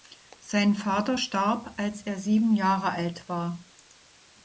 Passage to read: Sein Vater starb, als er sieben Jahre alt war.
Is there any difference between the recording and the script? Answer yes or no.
no